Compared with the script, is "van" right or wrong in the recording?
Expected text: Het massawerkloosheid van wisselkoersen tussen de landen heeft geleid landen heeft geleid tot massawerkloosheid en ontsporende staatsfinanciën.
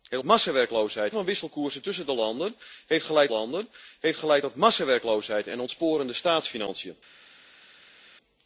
right